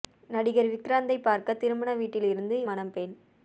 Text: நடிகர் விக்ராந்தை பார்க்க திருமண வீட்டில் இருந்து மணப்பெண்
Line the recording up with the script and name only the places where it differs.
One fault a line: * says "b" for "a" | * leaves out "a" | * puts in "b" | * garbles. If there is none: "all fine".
all fine